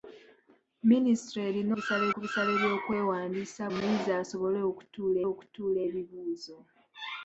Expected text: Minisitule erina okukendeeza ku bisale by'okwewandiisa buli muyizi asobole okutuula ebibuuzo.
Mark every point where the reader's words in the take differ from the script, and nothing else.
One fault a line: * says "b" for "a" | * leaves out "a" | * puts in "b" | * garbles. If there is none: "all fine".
* says "bisale" for "okukendeeza"
* leaves out "buli"
* puts in "okutuula"